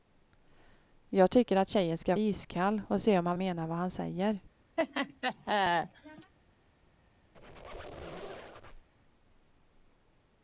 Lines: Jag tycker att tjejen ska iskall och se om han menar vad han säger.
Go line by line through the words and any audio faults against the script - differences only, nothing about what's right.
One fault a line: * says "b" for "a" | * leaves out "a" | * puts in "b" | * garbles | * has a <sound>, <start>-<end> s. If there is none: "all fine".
* has a laugh, 4.8-6.3 s
* has a squeak, 7.3-8.9 s